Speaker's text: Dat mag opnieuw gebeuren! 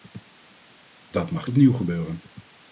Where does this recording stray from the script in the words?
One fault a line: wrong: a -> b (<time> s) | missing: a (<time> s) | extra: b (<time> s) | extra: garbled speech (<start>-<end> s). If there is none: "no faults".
no faults